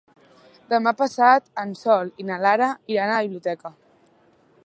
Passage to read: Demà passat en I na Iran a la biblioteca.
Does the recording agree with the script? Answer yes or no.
no